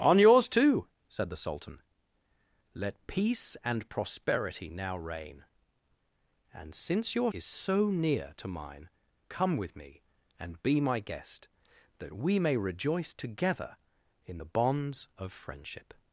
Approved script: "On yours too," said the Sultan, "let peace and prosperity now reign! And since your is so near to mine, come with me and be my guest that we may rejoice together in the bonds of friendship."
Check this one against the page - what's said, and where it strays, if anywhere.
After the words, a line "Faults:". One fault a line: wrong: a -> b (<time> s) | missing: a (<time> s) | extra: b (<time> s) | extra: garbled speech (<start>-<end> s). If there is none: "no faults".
"On yours too," said the Sultan, "let peace and prosperity now reign! And since your is so near to mine, come with me and be my guest that we may rejoice together in the bonds of friendship."
Faults:
no faults